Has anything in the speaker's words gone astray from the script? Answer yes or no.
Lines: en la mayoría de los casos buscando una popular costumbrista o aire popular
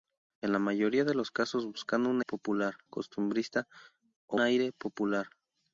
no